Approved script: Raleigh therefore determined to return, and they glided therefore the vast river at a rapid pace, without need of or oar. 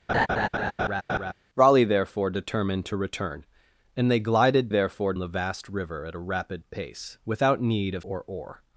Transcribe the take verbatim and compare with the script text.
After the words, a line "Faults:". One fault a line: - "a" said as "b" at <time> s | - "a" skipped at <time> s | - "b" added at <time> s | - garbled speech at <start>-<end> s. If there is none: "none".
Raleigh therefore determined to return, and they glided therefore the vast river at a rapid pace, without need of or oar.
Faults:
none